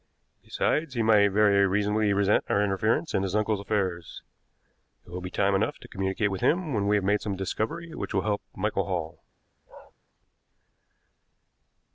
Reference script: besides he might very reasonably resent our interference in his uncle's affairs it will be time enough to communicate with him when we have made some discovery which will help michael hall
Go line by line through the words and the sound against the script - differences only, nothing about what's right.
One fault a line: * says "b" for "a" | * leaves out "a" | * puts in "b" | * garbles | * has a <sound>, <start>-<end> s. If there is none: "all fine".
* has a bark, 9.7-9.9 s